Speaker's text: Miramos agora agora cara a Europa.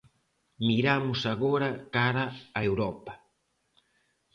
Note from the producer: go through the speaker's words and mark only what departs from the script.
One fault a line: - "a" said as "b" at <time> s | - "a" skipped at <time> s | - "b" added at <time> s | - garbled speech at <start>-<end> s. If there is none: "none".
- "agora" skipped at 1.7 s